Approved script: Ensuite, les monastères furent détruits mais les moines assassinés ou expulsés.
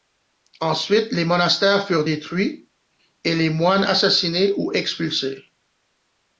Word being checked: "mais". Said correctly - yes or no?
no